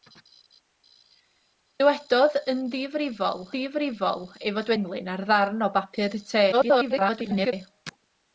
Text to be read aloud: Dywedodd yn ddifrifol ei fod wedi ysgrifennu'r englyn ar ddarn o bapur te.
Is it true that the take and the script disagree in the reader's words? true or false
true